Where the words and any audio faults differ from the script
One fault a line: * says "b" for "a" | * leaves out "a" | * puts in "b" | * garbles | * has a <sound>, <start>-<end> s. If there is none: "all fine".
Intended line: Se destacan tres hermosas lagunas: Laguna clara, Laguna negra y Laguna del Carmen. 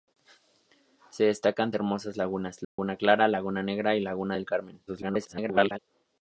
* leaves out "tres"
* has a dropout, 2.6-2.8 s
* garbles